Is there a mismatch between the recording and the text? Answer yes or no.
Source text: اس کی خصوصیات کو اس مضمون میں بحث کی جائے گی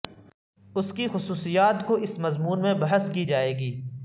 no